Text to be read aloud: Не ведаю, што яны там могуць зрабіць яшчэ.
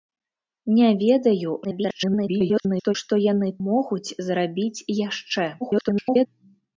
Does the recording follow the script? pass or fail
fail